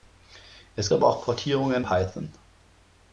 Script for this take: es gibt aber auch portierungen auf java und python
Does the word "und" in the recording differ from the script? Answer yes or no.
yes